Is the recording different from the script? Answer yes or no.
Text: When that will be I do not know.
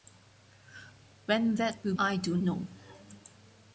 yes